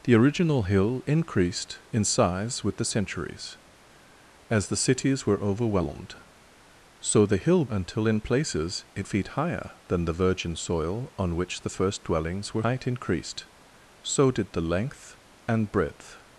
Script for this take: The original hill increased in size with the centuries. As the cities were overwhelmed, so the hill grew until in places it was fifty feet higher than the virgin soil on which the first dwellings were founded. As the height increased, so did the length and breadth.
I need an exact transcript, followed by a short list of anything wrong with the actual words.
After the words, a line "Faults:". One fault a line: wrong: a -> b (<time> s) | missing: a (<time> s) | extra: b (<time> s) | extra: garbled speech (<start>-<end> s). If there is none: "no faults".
The original hill increased in size with the centuries. As the cities were overwhelmed, so the hill until in places it feet higher than the virgin soil on which the first dwellings were height increased, so did the length and breadth.
Faults:
missing: grew (7.7 s)
missing: was fifty (9.1 s)
missing: founded As the (12.6 s)